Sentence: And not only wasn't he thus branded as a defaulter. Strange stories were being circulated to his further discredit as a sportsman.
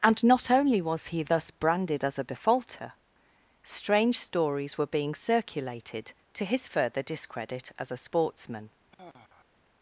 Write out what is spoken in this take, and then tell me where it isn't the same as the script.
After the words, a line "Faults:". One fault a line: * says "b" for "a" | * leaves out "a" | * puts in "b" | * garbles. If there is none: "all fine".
And not only was he thus branded as a defaulter. Strange stories were being circulated to his further discredit as a sportsman.
Faults:
* says "was" for "wasn't"